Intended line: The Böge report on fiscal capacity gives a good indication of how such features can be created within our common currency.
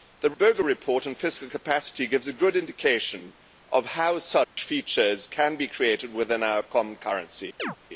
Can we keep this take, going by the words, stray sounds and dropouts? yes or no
no